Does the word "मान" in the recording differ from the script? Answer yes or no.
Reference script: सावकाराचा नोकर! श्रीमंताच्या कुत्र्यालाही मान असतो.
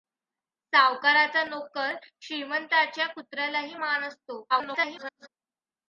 no